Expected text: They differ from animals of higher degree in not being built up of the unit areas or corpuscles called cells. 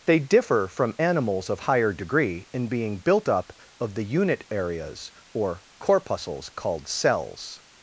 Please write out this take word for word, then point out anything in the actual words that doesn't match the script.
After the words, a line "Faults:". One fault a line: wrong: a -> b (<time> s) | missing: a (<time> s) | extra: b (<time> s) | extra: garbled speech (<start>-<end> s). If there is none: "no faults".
They differ from animals of higher degree in being built up of the unit areas or corpuscles called cells.
Faults:
missing: not (2.7 s)